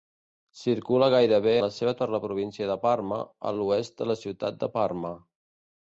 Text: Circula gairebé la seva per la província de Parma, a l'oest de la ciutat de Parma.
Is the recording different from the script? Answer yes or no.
no